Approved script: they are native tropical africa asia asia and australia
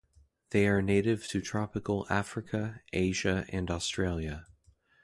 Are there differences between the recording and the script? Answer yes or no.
yes